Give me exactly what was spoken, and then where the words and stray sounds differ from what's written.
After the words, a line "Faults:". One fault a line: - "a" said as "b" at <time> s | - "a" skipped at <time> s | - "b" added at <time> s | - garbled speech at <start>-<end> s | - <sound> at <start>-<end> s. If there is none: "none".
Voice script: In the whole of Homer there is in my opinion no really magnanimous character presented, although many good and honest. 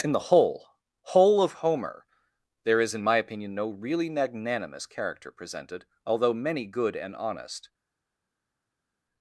In the whole whole of Homer there is in my opinion no really magnanimous character presented, although many good and honest.
Faults:
- "whole" added at 1.0 s